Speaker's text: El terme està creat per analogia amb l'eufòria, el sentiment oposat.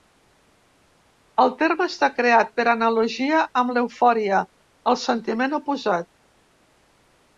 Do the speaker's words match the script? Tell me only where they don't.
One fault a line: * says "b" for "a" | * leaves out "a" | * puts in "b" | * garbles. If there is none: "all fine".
all fine